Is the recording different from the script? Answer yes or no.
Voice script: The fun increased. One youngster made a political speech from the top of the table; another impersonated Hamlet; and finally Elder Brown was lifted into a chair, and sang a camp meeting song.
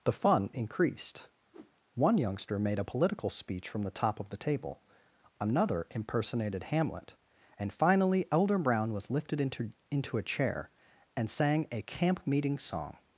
yes